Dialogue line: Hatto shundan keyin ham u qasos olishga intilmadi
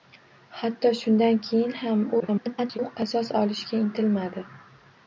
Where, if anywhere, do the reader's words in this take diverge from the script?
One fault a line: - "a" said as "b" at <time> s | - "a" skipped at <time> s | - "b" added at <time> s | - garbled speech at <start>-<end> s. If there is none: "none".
- garbled speech at 2.2-2.8 s